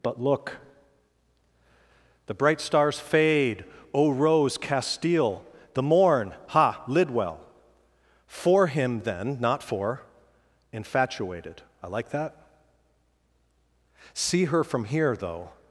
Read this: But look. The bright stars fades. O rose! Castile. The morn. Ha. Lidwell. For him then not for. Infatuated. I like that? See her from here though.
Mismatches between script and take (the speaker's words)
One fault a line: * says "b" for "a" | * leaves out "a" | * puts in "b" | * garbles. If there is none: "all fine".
* says "fade" for "fades"